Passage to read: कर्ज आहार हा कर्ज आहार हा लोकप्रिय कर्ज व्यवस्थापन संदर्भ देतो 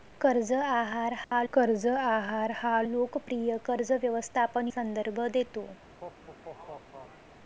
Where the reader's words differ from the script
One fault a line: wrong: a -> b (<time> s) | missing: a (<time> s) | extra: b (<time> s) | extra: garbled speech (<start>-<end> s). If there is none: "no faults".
no faults